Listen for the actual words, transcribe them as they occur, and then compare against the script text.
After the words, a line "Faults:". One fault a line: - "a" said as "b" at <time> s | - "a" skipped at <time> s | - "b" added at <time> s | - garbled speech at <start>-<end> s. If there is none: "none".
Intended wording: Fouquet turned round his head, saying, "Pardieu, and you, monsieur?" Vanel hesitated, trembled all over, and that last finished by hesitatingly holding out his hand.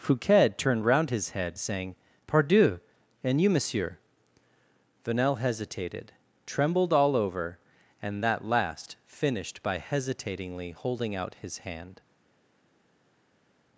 Fouquet turned round his head, saying, "Pardieu, and you, monsieur?" Vanel hesitated, trembled all over, and that last finished by hesitatingly holding out his hand.
Faults:
none